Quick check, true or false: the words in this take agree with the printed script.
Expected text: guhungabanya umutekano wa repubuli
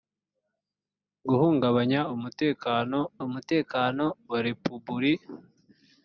false